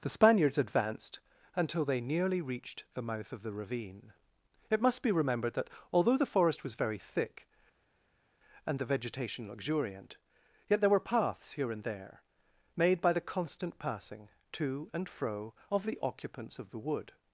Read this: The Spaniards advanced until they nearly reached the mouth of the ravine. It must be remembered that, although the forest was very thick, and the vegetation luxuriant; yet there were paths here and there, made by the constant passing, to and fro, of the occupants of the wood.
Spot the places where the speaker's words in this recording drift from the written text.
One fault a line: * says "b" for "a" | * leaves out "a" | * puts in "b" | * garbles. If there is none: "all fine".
all fine